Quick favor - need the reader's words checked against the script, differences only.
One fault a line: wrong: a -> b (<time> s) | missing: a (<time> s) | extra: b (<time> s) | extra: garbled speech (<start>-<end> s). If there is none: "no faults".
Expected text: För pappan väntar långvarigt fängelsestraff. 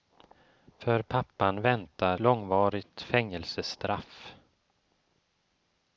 no faults